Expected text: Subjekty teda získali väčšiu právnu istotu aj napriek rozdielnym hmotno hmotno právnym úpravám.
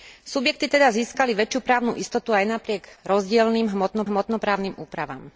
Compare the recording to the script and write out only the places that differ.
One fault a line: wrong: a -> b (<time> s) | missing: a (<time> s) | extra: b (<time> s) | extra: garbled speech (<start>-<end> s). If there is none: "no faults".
no faults